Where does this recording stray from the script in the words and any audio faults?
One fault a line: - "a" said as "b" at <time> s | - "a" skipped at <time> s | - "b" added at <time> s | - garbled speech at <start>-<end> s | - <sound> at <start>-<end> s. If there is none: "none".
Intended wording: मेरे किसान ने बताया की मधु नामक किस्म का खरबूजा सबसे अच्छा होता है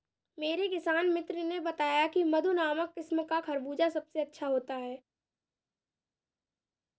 - "मित्र" added at 1.1 s